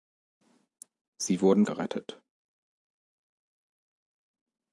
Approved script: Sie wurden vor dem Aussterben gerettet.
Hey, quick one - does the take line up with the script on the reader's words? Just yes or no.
no